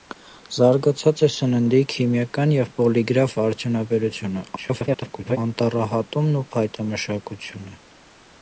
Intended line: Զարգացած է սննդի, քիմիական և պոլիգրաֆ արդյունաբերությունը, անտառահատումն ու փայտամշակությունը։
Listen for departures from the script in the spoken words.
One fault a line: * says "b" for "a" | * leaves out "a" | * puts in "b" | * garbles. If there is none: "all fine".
* garbles